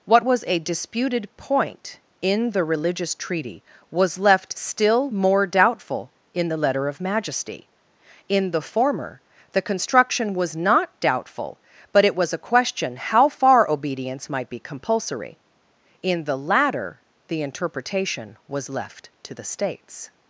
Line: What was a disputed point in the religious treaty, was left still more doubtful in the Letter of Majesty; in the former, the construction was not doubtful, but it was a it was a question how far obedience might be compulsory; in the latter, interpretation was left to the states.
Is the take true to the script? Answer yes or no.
no